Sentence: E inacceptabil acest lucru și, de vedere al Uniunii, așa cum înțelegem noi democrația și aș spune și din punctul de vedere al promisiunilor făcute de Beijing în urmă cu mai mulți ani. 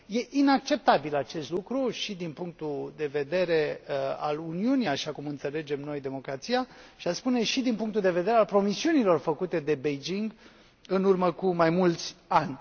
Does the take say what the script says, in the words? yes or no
no